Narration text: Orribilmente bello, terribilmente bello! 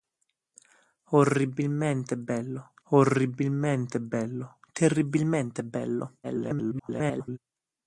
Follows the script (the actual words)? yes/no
no